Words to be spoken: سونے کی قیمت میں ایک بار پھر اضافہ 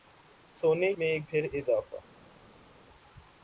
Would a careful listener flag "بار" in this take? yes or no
yes